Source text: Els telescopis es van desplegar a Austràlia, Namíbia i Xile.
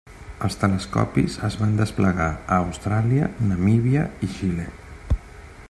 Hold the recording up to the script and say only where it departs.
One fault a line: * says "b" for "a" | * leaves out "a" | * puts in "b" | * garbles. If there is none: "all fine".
all fine